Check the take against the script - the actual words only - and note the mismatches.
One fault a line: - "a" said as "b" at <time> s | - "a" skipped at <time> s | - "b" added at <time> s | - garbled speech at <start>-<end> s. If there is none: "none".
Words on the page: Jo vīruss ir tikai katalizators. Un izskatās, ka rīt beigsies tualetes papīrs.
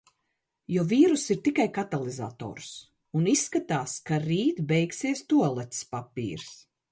none